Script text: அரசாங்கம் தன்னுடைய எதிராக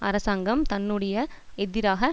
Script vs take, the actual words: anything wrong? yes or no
no